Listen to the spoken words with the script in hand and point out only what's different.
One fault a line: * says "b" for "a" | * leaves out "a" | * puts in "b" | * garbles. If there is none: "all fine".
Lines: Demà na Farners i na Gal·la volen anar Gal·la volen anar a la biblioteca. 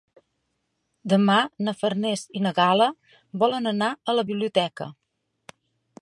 * leaves out "Gal·la volen anar"